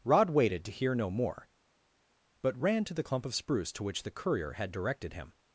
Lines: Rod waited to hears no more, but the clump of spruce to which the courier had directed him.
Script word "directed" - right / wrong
right